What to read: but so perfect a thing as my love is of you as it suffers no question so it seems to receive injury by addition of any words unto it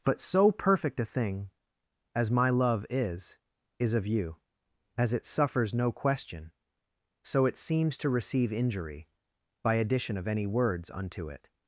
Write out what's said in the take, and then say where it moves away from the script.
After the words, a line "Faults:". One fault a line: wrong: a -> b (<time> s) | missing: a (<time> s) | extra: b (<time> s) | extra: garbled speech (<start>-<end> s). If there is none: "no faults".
but so perfect a thing as my love is is of you as it suffers no question so it seems to receive injury by addition of any words unto it
Faults:
extra: is (3.8 s)